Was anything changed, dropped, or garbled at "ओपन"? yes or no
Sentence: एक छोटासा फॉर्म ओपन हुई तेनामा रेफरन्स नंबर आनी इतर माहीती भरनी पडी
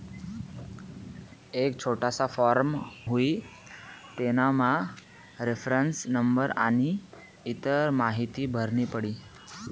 yes